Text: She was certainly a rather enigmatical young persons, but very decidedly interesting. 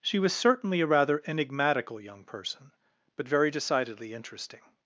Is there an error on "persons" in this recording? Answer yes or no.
yes